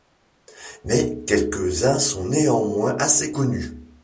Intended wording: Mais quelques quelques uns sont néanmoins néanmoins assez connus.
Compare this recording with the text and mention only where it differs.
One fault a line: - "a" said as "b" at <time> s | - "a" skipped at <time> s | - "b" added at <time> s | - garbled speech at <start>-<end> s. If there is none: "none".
- "quelques" skipped at 1.8 s
- "néanmoins" skipped at 3.0 s